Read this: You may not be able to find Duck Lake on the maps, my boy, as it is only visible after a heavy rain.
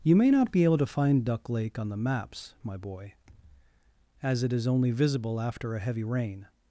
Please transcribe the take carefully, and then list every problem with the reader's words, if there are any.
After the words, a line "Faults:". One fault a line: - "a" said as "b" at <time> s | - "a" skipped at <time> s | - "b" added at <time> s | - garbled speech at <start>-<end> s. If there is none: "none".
You may not be able to find Duck Lake on the maps, my boy, as it is only visible after a heavy rain.
Faults:
none